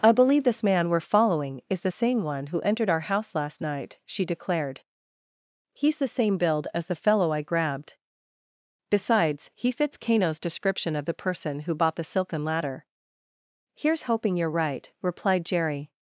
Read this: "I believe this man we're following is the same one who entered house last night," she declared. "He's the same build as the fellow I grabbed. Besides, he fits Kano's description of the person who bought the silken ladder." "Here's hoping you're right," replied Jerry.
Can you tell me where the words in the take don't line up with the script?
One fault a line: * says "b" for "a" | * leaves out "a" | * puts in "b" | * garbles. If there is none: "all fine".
* puts in "our"